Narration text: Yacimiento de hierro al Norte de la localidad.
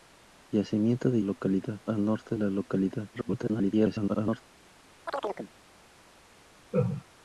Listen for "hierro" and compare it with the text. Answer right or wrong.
wrong